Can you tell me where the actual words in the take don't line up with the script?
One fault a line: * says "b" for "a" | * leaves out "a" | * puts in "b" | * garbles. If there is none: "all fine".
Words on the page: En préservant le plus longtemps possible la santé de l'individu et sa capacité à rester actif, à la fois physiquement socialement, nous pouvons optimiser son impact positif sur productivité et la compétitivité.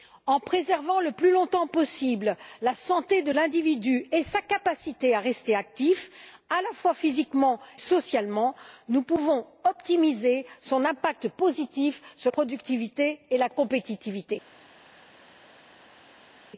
all fine